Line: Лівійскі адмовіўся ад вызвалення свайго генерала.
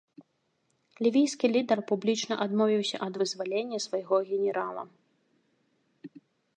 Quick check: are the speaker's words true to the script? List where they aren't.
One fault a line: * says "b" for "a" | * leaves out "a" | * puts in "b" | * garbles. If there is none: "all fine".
* puts in "лідар публічна"